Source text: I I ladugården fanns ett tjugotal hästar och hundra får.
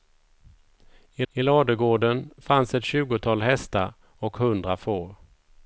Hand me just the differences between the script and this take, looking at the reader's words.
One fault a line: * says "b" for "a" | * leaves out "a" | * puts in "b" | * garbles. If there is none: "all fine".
all fine